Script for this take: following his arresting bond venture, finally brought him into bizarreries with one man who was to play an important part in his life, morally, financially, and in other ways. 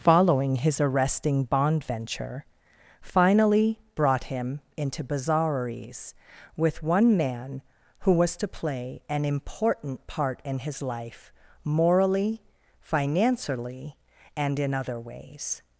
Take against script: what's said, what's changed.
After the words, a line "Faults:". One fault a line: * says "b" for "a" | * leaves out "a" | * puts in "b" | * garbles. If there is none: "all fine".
following his arresting bond venture, finally brought him into bizarreries with one man who was to play an important part in his life, morally, financially, and in other ways.
Faults:
all fine